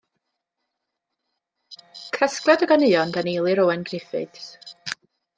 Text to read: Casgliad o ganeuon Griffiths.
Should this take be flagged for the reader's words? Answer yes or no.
yes